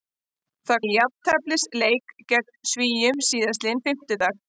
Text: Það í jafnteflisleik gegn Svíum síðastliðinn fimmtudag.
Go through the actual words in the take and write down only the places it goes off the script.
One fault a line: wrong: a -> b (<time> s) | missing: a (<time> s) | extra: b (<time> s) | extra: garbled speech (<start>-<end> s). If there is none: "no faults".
no faults